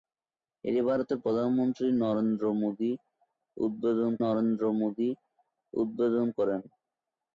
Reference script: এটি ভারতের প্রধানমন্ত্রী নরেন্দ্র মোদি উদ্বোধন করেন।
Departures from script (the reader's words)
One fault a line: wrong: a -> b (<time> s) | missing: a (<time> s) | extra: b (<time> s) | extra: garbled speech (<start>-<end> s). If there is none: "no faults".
extra: নরেন্দ্র মোদি উদ্বোধন (4.2 s)